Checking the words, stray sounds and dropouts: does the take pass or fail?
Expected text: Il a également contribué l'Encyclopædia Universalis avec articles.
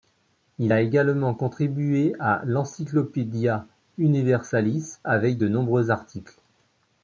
fail